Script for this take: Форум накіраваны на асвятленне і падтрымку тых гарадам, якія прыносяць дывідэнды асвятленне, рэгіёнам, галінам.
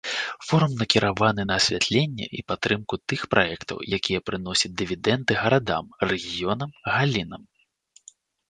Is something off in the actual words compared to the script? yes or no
yes